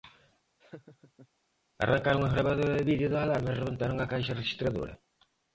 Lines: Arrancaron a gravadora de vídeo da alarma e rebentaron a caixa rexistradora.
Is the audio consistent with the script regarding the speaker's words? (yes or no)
yes